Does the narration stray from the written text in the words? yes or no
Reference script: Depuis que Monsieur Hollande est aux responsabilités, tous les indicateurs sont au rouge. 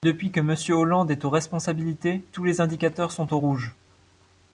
no